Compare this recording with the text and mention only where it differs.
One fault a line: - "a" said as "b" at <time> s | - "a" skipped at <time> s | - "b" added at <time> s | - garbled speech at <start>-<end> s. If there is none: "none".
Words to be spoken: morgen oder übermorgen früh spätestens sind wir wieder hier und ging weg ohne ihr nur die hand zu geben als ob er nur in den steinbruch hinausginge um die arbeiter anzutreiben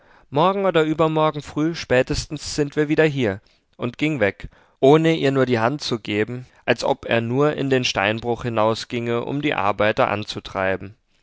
none